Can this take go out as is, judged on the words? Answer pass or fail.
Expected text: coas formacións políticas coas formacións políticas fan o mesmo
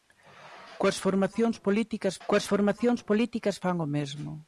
pass